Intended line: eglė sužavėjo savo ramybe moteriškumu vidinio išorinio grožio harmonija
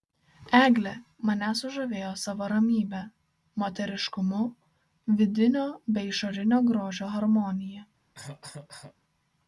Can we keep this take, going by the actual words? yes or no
no